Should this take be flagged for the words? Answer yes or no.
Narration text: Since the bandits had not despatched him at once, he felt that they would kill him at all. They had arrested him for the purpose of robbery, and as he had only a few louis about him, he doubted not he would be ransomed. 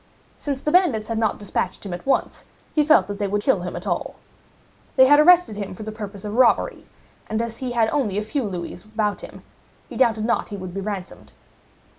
no